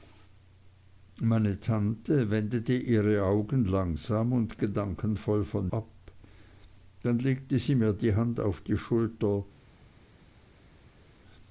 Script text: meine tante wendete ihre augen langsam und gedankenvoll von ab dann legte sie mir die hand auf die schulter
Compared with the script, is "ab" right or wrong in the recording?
right